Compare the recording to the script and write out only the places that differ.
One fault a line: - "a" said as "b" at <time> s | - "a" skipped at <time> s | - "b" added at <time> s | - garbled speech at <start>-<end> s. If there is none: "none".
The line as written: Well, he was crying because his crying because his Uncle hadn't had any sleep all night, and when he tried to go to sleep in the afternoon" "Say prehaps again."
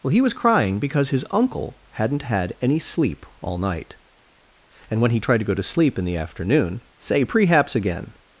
- "crying because his" skipped at 1.2 s